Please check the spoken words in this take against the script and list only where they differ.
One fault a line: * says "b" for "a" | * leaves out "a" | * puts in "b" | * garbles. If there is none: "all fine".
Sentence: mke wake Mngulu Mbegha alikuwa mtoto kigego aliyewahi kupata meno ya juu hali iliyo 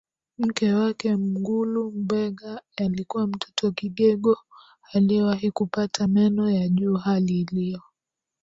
all fine